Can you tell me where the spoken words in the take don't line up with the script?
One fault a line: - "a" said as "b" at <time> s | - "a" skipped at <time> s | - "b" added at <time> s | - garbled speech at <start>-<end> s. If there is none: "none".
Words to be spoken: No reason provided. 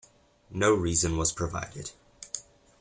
- "was" added at 1.1 s